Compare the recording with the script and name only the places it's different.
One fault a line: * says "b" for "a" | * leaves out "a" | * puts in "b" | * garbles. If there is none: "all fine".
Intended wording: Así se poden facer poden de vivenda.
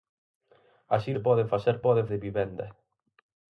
all fine